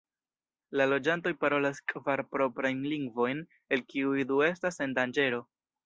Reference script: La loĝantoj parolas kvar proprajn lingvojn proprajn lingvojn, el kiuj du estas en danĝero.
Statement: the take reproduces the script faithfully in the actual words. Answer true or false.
false